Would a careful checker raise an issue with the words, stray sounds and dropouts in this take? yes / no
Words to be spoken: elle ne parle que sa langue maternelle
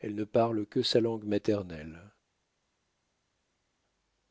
no